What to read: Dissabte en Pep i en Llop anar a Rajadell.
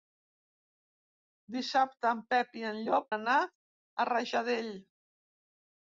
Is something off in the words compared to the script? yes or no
no